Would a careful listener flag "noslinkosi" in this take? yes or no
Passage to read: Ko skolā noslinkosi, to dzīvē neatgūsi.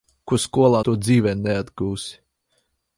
yes